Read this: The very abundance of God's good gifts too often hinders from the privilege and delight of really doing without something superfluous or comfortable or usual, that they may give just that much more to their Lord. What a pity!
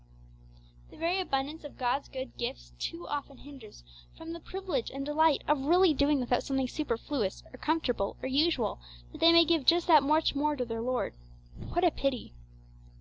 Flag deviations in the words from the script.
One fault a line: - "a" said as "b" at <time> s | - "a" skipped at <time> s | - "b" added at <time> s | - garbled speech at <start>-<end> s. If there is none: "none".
none